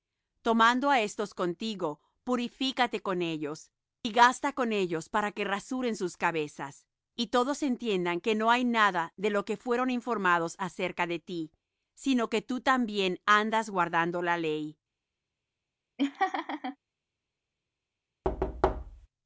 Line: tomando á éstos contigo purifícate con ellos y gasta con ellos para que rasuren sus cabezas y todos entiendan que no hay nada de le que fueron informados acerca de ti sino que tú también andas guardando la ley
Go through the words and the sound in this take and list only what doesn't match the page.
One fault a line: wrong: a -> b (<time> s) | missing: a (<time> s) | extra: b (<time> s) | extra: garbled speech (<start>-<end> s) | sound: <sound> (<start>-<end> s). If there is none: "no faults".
wrong: le -> lo (9.3 s)
sound: laugh (16.0-16.8 s)
sound: thud (18.2-19.1 s)